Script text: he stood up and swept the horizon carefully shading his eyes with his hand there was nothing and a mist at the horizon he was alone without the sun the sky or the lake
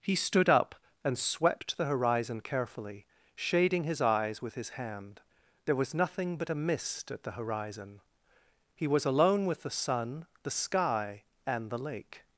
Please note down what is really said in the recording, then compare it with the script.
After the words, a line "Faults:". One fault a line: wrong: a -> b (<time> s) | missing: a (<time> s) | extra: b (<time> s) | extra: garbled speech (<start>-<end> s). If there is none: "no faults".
he stood up and swept the horizon carefully shading his eyes with his hand there was nothing but a mist at the horizon he was alone with the sun the sky and the lake
Faults:
wrong: and -> but (6.4 s)
wrong: without -> with (9.4 s)
wrong: or -> and (11.4 s)